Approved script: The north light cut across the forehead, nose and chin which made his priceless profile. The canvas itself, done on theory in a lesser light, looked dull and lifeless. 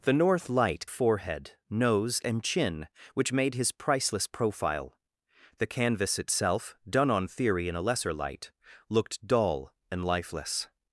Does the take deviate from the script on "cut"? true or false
true